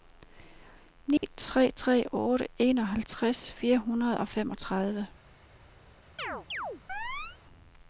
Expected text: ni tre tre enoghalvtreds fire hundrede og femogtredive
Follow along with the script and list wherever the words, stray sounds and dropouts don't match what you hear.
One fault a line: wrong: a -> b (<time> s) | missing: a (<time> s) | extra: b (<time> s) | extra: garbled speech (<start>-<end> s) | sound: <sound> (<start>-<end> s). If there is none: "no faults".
sound: dropout (1.2-1.2 s)
extra: otte (2.1 s)
sound: chirp (6.2-7.4 s)